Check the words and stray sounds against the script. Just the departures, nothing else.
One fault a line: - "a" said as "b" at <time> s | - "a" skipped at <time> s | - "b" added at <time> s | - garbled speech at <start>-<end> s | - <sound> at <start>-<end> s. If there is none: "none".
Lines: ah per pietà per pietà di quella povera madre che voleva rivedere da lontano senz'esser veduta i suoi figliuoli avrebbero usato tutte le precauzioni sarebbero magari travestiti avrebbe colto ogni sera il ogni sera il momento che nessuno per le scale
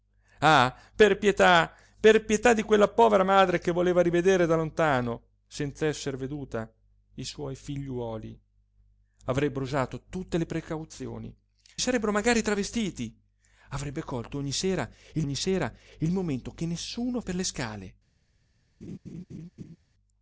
- laugh at 18.8-19.8 s